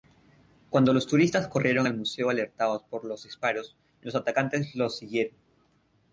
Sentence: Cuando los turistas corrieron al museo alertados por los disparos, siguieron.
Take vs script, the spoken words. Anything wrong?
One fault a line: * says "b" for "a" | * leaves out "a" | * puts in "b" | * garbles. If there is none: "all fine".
* puts in "los atacantes los"